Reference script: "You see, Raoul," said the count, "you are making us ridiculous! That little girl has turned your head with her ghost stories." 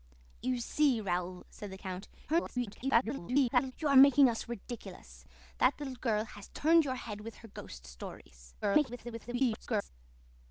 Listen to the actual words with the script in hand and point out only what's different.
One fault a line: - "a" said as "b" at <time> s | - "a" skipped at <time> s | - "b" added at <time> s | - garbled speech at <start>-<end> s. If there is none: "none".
- garbled speech at 2.3-3.7 s
- garbled speech at 8.6-9.9 s